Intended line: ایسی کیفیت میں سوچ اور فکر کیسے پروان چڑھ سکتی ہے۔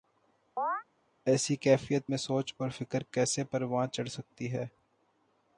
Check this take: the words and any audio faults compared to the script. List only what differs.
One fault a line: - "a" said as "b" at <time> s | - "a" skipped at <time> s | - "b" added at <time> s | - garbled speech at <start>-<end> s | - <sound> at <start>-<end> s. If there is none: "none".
- chirp at 0.6-0.8 s